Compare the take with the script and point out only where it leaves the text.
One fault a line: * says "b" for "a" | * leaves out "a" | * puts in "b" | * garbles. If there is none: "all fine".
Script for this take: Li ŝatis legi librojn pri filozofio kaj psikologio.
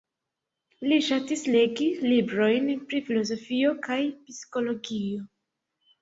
all fine